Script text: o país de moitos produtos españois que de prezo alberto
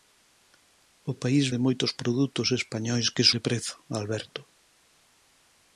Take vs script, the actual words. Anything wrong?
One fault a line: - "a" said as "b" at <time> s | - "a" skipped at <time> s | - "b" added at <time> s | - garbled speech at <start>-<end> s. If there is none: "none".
none